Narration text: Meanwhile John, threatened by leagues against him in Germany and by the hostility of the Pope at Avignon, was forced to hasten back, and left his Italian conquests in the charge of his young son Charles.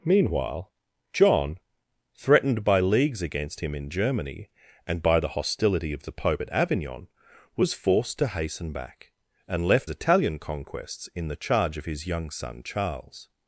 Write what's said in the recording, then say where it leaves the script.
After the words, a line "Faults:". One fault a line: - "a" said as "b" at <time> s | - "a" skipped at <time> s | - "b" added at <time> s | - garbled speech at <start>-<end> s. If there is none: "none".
Meanwhile John, threatened by leagues against him in Germany and by the hostility of the Pope at Avignon, was forced to hasten back, and left Italian conquests in the charge of his young son Charles.
Faults:
- "his" skipped at 9.9 s